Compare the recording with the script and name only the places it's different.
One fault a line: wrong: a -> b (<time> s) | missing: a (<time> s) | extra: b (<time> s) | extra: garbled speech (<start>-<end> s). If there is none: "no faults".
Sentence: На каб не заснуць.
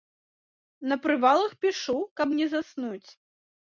extra: прывалах пішу (1.0 s)